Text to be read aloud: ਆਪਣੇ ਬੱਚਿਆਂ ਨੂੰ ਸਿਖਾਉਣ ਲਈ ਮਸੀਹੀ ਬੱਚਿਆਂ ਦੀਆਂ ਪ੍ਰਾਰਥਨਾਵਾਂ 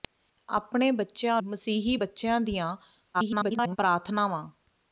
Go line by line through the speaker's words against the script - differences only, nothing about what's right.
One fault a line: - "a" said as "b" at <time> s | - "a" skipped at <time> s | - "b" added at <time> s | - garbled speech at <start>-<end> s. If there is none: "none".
- "ਨੂੰ ਸਿਖਾਉਣ ਲਈ" skipped at 1.4 s
- garbled speech at 3.1-3.8 s